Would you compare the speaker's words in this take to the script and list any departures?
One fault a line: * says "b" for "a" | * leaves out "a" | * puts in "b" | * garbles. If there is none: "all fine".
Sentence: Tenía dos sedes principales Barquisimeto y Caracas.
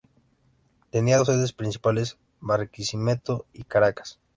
all fine